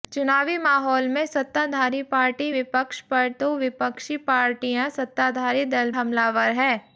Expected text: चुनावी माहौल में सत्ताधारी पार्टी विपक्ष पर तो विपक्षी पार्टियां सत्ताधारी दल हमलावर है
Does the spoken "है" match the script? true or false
true